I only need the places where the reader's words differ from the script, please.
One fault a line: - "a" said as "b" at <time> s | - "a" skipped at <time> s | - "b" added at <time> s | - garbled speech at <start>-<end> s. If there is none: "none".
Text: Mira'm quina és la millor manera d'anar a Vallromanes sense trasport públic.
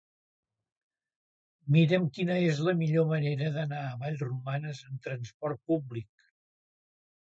- "sense" said as "amb" at 4.9 s